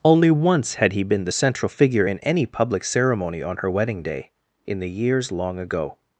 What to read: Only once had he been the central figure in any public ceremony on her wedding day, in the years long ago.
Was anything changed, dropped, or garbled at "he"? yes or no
no